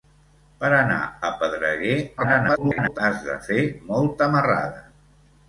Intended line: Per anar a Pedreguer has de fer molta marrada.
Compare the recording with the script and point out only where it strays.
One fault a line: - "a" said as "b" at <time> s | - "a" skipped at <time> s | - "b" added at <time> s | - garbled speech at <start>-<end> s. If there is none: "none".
- garbled speech at 2.2-3.0 s